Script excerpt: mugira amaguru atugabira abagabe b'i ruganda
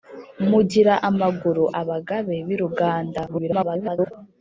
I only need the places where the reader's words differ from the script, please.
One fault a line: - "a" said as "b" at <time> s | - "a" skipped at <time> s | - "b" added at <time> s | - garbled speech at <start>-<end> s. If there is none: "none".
- "atugabira" skipped at 1.6 s
- garbled speech at 3.3-4.1 s